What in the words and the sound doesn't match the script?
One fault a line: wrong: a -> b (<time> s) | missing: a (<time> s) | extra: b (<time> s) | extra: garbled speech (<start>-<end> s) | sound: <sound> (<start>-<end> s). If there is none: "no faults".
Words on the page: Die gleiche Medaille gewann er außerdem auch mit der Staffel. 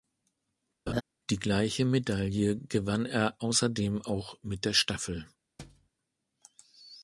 sound: laugh (0.9-1.0 s)
sound: thud (5.6-5.9 s)